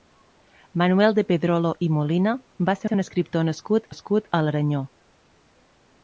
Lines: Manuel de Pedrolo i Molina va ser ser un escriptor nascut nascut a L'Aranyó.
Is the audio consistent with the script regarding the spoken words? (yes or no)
yes